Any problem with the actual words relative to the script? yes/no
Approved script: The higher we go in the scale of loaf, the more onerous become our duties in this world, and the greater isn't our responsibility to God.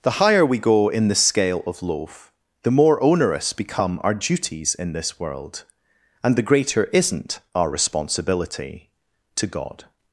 no